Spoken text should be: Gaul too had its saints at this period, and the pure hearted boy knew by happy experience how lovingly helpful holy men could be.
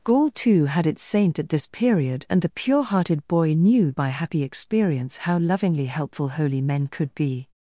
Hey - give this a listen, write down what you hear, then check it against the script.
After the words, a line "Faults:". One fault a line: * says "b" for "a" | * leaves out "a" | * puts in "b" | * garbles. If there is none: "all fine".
Gaul too had its saint at this period, and the pure hearted boy knew by happy experience how lovingly helpful holy men could be.
Faults:
* says "saint" for "saints"